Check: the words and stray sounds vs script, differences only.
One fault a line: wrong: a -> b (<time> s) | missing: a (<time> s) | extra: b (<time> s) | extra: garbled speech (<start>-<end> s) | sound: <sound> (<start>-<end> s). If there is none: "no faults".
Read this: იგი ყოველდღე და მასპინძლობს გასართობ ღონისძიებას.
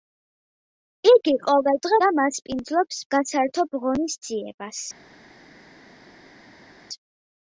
no faults